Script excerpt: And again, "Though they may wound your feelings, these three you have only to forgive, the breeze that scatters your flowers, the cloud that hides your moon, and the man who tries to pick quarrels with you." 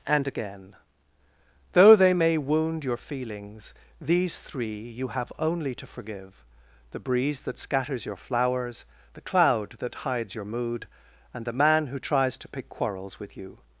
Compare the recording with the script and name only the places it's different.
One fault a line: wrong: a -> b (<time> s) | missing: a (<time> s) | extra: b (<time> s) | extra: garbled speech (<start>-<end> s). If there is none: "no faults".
wrong: moon -> mood (10.4 s)